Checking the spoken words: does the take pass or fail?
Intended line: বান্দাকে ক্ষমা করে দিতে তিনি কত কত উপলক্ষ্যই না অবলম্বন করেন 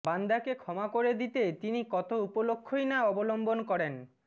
fail